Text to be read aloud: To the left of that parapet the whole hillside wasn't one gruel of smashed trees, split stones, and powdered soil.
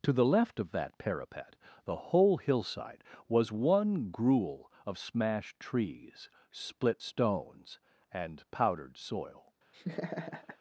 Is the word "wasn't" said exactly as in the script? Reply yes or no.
no